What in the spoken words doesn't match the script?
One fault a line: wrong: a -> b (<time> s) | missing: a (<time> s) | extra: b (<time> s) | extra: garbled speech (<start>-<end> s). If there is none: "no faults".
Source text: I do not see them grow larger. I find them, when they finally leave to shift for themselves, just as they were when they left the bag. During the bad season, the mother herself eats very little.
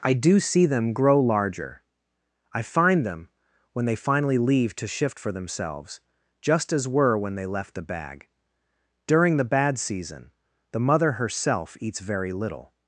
missing: not (0.4 s)
missing: they (6.9 s)